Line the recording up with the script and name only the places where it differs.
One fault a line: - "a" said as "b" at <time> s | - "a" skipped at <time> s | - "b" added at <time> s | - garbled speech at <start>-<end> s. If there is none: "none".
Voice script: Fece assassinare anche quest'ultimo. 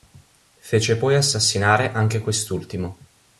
- "poi" added at 1.0 s